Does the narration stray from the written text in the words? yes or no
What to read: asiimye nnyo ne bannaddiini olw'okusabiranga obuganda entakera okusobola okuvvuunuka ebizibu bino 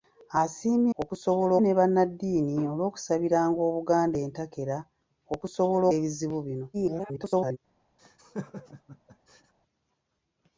yes